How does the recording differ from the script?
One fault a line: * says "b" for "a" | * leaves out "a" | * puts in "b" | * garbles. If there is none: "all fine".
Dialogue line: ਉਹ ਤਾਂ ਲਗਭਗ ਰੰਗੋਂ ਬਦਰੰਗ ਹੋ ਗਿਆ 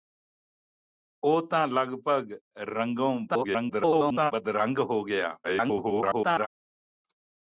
* garbles
* garbles